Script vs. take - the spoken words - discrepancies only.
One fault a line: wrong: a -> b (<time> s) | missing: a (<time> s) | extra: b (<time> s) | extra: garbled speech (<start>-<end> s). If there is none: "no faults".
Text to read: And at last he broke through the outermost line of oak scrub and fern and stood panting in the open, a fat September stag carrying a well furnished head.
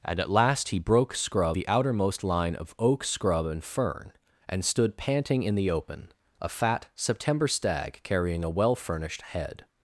wrong: through -> scrub (1.1 s)